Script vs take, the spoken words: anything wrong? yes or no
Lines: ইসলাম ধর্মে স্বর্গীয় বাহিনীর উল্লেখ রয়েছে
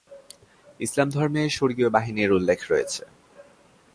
no